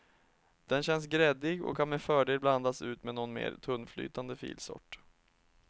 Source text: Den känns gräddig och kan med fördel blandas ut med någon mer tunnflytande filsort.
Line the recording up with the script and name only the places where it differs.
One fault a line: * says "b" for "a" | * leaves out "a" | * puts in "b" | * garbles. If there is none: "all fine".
all fine